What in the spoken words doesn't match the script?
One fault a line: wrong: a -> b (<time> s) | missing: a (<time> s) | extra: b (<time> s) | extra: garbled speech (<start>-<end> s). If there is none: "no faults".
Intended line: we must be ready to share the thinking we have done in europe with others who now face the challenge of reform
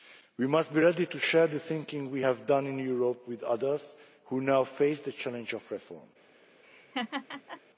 no faults